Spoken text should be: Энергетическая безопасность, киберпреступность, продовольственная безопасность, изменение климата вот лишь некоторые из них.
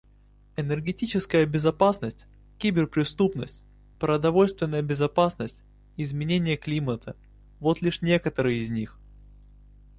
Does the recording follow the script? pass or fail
pass